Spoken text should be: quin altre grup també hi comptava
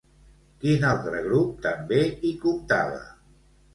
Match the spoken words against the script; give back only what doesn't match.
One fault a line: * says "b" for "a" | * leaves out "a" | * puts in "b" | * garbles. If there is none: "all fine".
all fine